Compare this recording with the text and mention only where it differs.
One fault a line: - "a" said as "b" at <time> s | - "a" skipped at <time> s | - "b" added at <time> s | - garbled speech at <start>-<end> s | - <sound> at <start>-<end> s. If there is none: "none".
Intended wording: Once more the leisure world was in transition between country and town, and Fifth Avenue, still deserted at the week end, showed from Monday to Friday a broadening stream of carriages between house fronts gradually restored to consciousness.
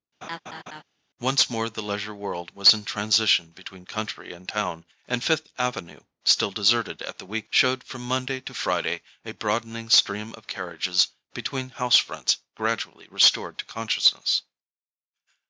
- laugh at 0.2-0.8 s
- "end" skipped at 7.5 s